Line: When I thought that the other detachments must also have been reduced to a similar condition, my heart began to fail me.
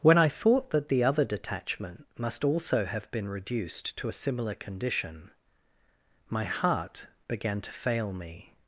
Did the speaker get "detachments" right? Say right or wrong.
wrong